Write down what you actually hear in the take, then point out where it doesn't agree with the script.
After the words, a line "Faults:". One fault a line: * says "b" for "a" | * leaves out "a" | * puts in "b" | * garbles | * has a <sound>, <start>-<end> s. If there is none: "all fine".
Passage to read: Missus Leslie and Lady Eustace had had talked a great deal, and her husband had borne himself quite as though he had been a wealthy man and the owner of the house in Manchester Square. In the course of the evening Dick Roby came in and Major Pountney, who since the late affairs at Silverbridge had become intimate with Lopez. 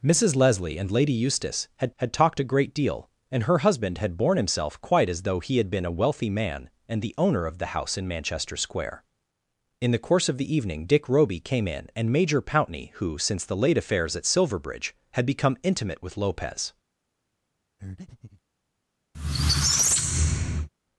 Missus Leslie and Lady Eustace had had talked a great deal, and her husband had borne himself quite as though he had been a wealthy man and the owner of the house in Manchester Square. In the course of the evening Dick Roby came in and Major Pountney, who since the late affairs at Silverbridge had become intimate with Lopez.
Faults:
* has a breath, 17.8-18.4 s
* has a squeak, 19.1-20.7 s